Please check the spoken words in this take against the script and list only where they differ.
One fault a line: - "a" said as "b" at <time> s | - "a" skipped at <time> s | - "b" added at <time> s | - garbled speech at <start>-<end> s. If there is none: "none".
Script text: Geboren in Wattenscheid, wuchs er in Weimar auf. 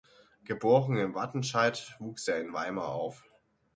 none